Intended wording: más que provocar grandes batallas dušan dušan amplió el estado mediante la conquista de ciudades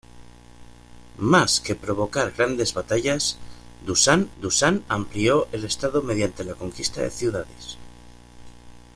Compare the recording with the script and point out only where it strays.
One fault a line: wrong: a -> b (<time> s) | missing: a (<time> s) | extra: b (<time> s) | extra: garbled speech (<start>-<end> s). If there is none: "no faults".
no faults